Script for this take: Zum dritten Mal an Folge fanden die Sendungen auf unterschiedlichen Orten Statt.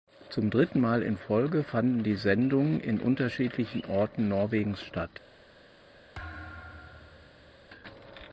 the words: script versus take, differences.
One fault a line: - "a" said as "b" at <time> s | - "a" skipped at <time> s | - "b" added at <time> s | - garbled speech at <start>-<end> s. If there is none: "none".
- "an" said as "in" at 1.0 s
- "auf" said as "in" at 2.8 s
- "Norwegens" added at 4.3 s